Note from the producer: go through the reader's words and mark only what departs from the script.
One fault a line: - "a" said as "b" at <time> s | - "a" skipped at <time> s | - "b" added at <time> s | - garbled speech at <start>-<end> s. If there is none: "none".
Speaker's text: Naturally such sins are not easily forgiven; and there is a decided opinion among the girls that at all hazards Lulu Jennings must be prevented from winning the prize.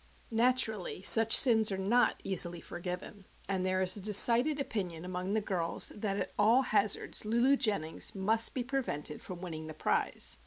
none